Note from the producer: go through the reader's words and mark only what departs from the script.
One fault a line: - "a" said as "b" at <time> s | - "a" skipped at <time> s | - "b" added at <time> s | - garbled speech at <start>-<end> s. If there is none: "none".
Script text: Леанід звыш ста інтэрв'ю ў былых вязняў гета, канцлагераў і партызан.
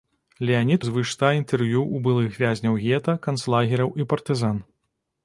none